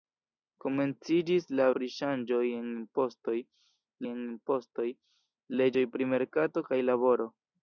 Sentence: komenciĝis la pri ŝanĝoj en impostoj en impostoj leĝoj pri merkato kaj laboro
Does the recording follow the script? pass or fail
pass